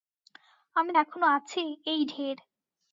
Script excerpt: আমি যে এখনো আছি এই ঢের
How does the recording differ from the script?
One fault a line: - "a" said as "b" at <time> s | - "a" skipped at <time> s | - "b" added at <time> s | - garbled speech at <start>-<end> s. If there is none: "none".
- "যে" skipped at 0.9 s